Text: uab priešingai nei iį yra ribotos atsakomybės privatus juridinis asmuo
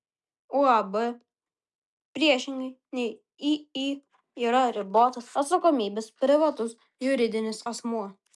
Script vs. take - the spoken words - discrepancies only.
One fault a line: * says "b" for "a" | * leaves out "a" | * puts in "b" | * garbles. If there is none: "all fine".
all fine